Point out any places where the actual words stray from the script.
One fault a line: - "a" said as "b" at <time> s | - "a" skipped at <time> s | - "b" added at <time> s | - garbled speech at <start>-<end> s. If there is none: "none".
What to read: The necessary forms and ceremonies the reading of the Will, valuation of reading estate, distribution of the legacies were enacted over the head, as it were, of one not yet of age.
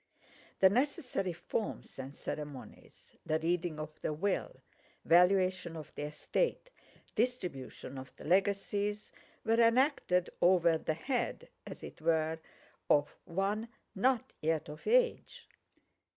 - "reading" said as "the" at 5.9 s